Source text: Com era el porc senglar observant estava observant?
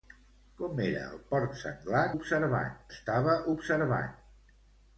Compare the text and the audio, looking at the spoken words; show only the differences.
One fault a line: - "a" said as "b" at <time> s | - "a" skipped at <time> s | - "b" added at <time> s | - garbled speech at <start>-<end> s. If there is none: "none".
none